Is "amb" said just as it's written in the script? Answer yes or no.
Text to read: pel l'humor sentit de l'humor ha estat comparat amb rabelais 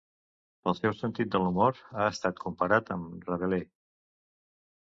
yes